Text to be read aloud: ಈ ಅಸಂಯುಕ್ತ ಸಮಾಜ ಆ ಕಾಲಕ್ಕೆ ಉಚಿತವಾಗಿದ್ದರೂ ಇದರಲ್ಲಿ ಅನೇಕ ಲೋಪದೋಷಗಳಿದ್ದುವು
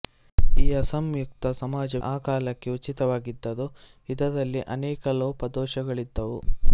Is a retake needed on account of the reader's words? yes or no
no